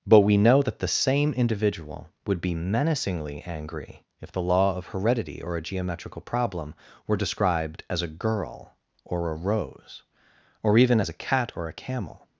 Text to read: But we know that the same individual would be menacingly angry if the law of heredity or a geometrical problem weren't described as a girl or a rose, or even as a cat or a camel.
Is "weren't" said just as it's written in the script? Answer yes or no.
no